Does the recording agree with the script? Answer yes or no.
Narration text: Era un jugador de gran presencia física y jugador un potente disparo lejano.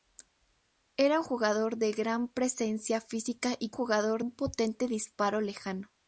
yes